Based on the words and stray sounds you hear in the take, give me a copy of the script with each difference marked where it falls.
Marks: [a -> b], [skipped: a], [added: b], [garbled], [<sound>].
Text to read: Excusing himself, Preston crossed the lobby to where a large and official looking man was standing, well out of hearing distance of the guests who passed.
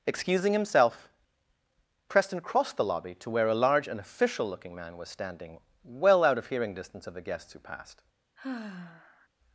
Excusing himself, Preston crossed the lobby to where a large and official looking man was standing, well out of hearing distance of the guests who passed. [sigh]